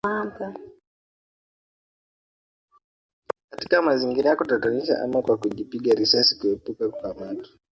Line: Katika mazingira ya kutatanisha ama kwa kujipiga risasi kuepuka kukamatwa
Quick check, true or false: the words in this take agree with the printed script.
true